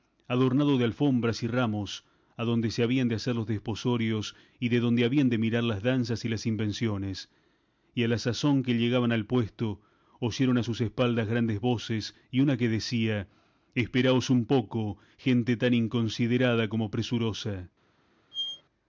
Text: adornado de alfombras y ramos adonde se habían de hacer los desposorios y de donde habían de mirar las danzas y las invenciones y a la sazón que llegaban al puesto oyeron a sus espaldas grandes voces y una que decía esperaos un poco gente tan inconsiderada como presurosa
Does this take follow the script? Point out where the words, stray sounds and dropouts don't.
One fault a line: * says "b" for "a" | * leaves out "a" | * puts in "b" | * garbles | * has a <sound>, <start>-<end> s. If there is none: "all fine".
* has a squeak, 18.3-18.6 s